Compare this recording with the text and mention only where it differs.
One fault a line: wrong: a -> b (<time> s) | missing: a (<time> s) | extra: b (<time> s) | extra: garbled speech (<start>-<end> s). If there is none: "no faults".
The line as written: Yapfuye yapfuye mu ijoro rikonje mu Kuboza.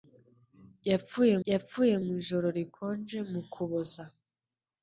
no faults